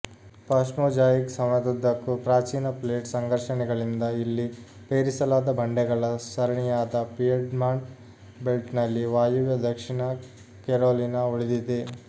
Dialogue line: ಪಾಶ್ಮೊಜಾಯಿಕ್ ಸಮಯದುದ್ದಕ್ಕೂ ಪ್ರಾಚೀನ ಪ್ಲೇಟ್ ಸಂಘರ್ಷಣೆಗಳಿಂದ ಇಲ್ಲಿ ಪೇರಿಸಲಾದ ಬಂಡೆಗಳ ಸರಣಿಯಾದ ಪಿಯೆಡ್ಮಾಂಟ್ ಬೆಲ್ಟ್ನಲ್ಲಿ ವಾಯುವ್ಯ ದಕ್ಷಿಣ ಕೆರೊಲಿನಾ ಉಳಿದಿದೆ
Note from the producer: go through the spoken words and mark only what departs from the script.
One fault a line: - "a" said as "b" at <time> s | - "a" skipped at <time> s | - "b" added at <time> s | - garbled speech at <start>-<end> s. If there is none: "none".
none